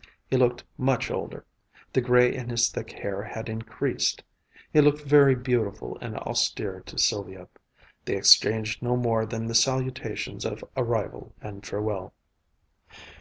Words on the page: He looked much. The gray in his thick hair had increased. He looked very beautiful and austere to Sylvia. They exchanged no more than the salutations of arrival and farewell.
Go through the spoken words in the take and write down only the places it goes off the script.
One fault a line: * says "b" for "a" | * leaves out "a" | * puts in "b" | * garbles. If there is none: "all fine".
* puts in "older"